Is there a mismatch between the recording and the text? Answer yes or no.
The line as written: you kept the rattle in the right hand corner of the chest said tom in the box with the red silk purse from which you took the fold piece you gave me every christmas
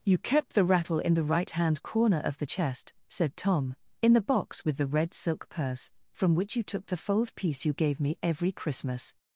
no